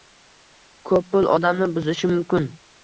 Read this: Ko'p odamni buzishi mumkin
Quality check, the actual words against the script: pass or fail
fail